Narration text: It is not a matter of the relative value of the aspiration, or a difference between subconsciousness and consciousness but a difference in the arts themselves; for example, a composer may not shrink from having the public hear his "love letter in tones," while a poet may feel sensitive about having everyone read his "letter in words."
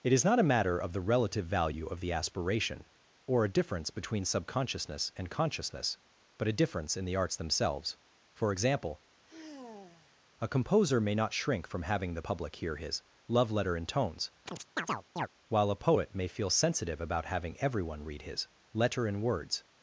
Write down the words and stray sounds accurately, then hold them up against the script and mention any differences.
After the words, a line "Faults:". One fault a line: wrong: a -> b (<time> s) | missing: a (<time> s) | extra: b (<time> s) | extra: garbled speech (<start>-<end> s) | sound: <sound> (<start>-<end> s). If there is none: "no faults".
It is not a matter of the relative value of the aspiration, or a difference between subconsciousness and consciousness but a difference in the arts themselves; for example, a composer may not shrink from having the public hear his "love letter in tones," while a poet may feel sensitive about having everyone read his "letter in words."
Faults:
sound: sigh (9.2-10.2 s)
sound: chirp (14.5-15.3 s)